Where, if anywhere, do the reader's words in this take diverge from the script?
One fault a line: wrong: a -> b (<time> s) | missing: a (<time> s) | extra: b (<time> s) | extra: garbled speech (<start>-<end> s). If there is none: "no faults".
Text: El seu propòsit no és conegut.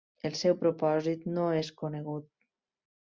no faults